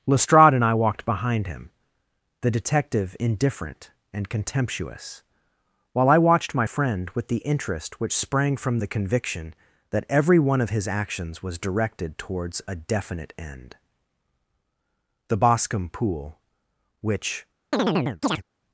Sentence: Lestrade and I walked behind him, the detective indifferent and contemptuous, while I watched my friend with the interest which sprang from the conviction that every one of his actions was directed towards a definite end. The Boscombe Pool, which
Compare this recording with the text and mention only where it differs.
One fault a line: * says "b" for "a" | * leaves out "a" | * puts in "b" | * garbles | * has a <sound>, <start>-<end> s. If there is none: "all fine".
* has a chirp, 17.7-18.4 s